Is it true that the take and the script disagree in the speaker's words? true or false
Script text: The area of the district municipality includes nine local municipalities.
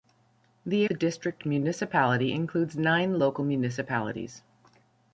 true